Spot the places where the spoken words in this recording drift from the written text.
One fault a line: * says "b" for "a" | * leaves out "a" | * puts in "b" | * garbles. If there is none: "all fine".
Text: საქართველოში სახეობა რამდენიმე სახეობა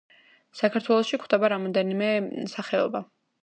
* says "გვხვდება" for "სახეობა"